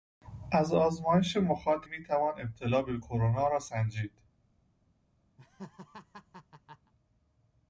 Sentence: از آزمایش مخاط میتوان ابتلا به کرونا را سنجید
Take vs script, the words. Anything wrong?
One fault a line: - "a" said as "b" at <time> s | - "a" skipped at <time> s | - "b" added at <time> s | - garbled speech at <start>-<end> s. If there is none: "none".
none